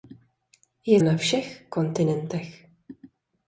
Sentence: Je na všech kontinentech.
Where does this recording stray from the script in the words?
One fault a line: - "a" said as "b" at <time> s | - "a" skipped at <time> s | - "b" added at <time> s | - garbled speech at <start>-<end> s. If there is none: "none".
none